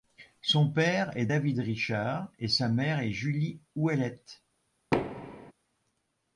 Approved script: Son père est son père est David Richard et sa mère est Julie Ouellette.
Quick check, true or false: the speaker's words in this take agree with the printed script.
false